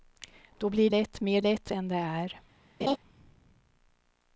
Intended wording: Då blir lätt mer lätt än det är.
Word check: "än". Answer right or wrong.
right